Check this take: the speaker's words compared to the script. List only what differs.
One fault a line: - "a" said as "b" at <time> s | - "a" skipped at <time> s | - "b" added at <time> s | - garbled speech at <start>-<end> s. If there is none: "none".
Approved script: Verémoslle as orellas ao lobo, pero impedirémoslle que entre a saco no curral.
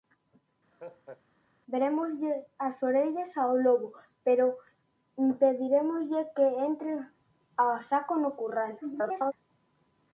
- garbled speech at 8.8-9.3 s